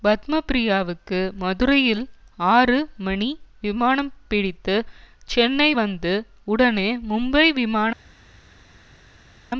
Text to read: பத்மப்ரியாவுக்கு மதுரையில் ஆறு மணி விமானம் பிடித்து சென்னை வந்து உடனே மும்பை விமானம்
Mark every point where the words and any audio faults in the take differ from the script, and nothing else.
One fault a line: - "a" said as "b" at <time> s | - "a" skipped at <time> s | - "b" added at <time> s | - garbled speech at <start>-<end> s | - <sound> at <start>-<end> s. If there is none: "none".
none